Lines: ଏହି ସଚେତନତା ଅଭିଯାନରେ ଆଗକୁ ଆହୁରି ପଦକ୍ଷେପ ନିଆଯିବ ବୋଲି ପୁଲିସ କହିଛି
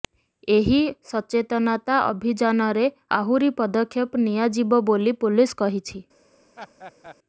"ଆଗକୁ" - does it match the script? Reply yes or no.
no